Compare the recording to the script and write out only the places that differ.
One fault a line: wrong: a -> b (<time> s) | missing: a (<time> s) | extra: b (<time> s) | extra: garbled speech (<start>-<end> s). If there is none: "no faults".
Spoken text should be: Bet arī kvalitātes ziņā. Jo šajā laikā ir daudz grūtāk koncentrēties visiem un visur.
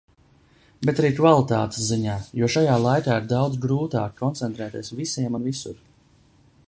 no faults